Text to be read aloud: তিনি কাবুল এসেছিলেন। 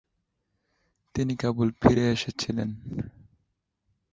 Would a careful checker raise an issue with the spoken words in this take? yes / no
yes